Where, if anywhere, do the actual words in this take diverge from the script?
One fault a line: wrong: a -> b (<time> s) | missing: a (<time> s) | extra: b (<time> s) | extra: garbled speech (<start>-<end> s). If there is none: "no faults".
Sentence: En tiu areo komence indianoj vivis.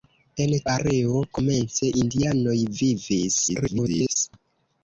missing: tiu (0.6 s)
extra: garbled speech (3.5-4.2 s)